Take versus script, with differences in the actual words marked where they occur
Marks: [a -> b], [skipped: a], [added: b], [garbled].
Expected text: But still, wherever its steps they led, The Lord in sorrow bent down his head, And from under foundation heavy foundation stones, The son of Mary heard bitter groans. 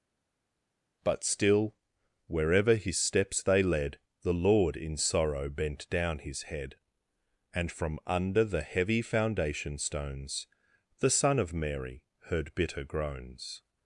But still, wherever [its -> his] steps they led, The Lord in sorrow bent down his head, And from under [foundation -> the] heavy foundation stones, The son of Mary heard bitter groans.